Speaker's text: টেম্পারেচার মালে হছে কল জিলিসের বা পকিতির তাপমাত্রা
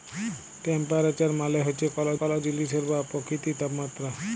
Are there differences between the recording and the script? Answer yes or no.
yes